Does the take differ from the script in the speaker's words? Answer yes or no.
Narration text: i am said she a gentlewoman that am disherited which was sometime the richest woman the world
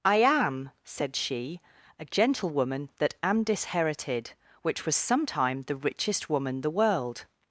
no